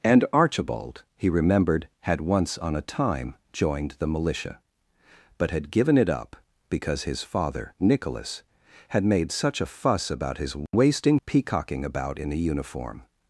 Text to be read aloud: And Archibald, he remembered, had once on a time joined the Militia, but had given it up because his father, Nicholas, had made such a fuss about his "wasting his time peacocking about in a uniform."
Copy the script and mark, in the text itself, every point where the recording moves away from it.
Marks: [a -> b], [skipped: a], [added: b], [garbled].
And Archibald, he remembered, had once on a time joined the Militia, but had given it up because his father, Nicholas, had made such a fuss about his "wasting [skipped: his time] peacocking about in a uniform."